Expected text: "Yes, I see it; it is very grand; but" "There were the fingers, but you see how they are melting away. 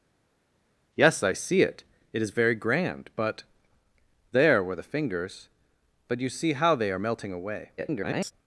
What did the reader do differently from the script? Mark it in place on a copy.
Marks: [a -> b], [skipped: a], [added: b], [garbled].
"Yes, I see it; it is very grand; but" "There were the fingers, but you see how they are melting away. [garbled]